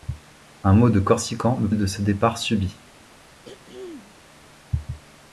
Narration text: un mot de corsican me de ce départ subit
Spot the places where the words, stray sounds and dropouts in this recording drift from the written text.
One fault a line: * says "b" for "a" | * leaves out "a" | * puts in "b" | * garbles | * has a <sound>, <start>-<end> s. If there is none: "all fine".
* has a throat clearing, 3.4-4.2 s